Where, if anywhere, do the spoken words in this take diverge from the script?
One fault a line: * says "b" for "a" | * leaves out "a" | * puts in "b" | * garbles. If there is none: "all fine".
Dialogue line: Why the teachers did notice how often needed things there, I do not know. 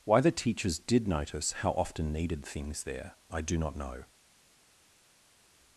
all fine